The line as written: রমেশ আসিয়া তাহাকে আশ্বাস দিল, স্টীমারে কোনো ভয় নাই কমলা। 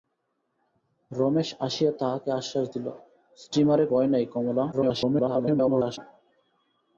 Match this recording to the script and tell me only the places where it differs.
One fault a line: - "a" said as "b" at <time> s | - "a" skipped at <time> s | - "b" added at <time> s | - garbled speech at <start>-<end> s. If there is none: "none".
- "কোনো" skipped at 3.8 s
- garbled speech at 4.7-6.0 s